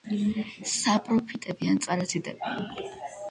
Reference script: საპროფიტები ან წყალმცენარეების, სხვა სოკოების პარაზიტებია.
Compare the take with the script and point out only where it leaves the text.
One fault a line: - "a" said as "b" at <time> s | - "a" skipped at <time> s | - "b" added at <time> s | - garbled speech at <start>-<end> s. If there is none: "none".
- "წყალმცენარეების სხვა სოკოების" skipped at 1.8 s